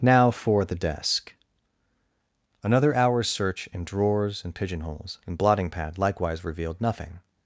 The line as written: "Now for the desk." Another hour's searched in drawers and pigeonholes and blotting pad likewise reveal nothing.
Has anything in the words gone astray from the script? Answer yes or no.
yes